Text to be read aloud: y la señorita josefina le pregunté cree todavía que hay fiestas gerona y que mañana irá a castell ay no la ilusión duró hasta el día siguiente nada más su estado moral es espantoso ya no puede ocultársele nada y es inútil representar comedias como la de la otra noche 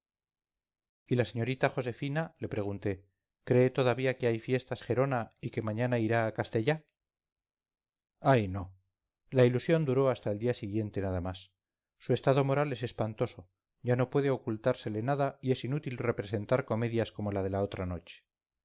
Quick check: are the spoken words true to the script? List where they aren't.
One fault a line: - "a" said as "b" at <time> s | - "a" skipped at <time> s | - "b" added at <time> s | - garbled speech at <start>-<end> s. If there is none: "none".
none